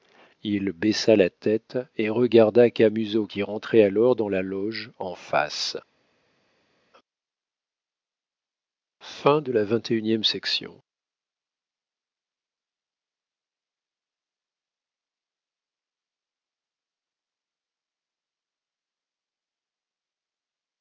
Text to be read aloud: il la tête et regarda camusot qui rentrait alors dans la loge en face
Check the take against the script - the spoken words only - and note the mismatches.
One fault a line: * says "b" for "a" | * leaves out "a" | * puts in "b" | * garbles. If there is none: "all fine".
* puts in "baissa"